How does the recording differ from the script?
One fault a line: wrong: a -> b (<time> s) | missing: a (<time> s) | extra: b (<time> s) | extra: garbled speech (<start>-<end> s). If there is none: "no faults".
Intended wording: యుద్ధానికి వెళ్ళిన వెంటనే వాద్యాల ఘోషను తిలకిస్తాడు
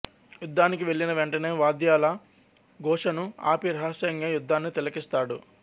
extra: ఆపి రహస్యంగా యుద్ధాన్ని (3.5 s)